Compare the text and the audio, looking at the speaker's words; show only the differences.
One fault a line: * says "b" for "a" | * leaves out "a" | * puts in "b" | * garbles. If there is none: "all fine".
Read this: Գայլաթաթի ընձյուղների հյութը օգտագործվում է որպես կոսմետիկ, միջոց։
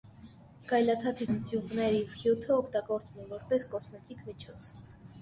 all fine